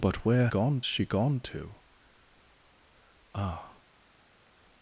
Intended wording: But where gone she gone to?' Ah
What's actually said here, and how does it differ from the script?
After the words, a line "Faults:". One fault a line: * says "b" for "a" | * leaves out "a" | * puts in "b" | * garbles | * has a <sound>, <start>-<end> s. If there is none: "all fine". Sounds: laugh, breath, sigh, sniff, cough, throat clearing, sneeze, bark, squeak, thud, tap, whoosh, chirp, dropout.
But where gone she gone to?' Ah
Faults:
all fine